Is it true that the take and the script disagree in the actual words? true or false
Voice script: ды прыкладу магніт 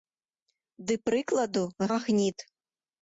false